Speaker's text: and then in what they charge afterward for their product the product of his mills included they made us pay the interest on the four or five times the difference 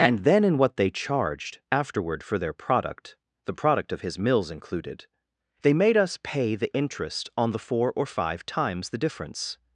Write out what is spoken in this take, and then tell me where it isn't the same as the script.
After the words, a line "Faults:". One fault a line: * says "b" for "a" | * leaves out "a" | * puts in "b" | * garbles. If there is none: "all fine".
and then in what they charged afterward for their product the product of his mills included they made us pay the interest on the four or five times the difference
Faults:
* says "charged" for "charge"